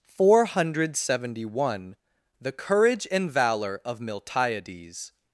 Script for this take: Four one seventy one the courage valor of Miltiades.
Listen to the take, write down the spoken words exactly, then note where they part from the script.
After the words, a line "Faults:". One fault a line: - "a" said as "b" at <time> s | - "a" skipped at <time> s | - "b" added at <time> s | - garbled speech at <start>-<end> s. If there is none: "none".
Four hundred seventy one the courage and valor of Miltiades.
Faults:
- "one" said as "hundred" at 0.5 s
- "and" added at 3.1 s